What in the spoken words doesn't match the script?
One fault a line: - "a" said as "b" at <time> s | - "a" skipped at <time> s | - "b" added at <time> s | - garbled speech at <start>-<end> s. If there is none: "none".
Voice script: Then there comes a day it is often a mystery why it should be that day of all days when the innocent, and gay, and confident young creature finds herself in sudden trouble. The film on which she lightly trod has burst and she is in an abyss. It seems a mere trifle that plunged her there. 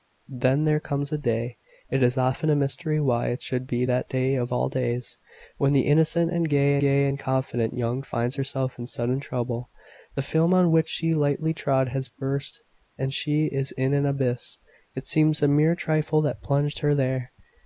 - "gay" added at 6.8 s
- "creature" skipped at 8.0 s